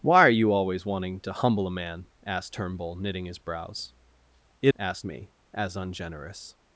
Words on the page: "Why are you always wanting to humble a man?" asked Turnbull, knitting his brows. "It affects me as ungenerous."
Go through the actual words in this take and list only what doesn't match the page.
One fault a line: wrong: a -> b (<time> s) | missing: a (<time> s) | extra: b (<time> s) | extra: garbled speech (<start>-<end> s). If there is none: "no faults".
wrong: affects -> asked (4.8 s)